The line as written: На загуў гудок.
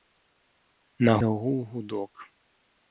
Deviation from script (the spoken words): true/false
false